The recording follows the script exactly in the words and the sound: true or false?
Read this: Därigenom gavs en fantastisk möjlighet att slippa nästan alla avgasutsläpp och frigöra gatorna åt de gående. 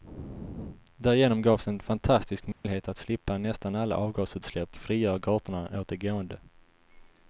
false